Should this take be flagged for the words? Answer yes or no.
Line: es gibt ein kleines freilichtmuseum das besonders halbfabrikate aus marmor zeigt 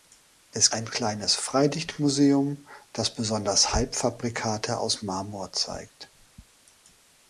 yes